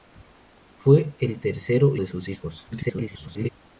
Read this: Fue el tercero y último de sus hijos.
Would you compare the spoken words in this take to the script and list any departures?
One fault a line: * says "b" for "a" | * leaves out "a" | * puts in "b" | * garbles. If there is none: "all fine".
* leaves out "y último"
* garbles